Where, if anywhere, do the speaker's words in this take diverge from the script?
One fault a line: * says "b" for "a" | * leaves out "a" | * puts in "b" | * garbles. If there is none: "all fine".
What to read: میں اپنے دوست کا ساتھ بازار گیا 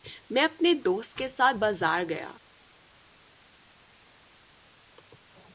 * says "کے" for "کا"